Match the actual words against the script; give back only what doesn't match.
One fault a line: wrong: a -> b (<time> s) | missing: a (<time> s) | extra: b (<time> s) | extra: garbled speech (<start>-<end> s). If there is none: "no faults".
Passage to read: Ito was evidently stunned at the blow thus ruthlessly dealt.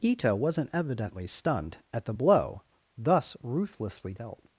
wrong: was -> wasn't (0.3 s)